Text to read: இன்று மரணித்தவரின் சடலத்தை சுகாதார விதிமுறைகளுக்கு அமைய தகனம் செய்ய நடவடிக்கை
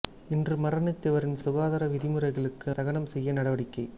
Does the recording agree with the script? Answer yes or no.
no